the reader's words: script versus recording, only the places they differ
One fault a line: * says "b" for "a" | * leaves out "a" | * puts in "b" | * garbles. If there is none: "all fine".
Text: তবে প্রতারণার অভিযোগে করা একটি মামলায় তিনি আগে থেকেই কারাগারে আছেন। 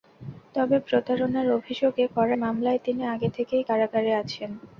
* leaves out "একটি"